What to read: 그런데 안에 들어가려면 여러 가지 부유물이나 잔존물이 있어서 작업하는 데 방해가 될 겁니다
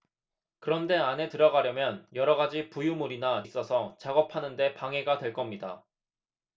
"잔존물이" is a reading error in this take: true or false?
true